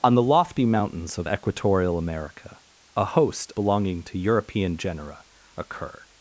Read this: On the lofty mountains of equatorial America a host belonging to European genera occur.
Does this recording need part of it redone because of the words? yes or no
no